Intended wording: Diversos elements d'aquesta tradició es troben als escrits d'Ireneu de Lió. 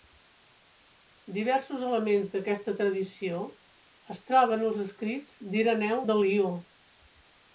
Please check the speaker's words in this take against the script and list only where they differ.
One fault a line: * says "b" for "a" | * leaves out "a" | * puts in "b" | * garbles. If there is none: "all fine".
all fine